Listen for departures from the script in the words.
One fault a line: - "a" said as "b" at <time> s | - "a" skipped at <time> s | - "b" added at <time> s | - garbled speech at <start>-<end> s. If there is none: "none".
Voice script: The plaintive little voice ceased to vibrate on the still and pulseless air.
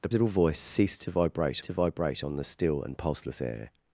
- "plaintive" skipped at 0.1 s
- "to vibrate" added at 1.6 s